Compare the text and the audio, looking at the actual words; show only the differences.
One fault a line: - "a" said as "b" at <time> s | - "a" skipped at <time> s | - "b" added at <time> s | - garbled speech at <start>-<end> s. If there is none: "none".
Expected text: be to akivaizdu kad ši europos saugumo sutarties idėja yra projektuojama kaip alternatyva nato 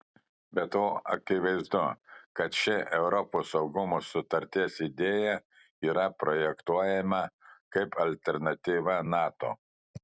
none